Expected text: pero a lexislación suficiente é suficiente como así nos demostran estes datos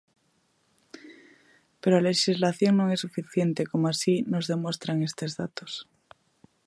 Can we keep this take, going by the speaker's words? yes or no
no